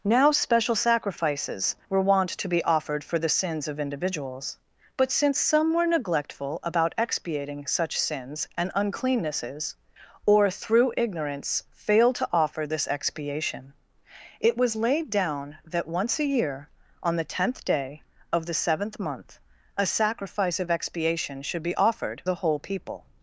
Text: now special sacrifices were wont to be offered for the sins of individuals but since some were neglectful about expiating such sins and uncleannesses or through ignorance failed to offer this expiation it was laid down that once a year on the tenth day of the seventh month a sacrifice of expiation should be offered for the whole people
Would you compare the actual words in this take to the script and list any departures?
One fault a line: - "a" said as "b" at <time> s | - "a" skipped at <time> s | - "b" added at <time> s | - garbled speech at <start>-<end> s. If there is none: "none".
- "for" skipped at 22.2 s